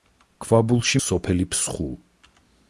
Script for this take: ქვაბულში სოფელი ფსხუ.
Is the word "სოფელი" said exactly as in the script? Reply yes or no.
yes